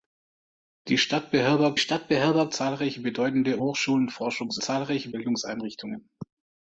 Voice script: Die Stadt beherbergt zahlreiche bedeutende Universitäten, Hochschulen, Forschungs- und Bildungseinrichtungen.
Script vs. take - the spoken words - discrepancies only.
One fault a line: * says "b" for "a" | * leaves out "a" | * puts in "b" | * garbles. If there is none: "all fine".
* puts in "Stadt beherbergt"
* leaves out "Universitäten"
* says "zahlreiche" for "und"